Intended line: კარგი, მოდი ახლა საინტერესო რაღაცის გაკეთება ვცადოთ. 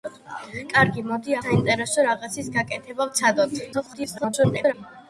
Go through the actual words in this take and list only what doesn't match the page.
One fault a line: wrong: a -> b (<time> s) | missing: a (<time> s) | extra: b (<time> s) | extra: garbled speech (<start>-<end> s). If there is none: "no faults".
missing: ახლა (1.4 s)
extra: garbled speech (3.7-4.7 s)